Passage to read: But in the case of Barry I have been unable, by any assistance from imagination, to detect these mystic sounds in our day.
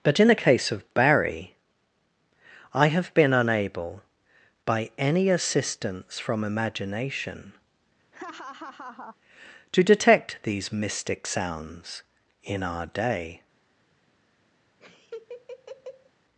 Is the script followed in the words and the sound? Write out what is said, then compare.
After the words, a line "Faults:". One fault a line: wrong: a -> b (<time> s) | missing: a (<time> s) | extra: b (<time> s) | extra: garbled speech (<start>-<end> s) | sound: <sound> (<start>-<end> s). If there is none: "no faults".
But in the case of Barry I have been unable, by any assistance from imagination, to detect these mystic sounds in our day.
Faults:
sound: laugh (8.1-9.2 s)
sound: laugh (14.8-16.1 s)